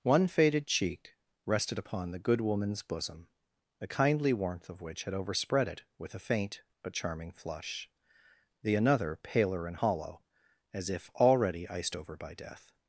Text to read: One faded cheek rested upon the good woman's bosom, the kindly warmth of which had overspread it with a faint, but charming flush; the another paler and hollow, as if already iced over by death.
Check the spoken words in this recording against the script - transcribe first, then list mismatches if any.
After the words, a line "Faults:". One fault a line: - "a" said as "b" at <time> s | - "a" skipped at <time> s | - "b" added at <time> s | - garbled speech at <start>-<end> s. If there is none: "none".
One faded cheek rested upon the good woman's bosom, the kindly warmth of which had overspread it with a faint, but charming flush; the another paler and hollow, as if already iced over by death.
Faults:
none